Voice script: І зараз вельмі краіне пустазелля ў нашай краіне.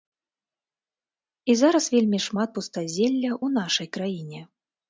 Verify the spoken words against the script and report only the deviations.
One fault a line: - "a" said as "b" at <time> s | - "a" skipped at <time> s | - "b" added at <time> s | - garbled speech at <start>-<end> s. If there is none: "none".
- "краіне" said as "шмат" at 2.3 s